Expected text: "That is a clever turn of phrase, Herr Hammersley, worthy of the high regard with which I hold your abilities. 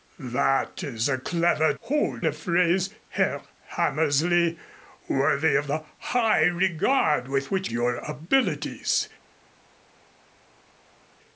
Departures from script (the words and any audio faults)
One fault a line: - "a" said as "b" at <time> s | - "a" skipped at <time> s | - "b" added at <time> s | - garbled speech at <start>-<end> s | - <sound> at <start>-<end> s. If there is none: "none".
- "turn" said as "hold" at 1.8 s
- "I hold" skipped at 7.7 s